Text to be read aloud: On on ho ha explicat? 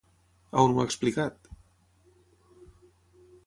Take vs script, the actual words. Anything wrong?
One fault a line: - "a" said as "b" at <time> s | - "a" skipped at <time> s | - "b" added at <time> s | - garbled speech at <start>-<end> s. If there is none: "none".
- "on" skipped at 0.7 s